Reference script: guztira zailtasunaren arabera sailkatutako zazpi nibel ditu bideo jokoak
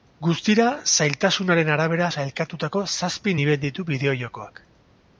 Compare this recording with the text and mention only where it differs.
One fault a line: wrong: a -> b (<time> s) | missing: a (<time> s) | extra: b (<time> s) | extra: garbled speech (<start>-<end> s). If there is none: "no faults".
no faults